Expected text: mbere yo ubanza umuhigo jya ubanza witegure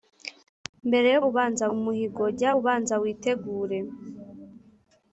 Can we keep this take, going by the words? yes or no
yes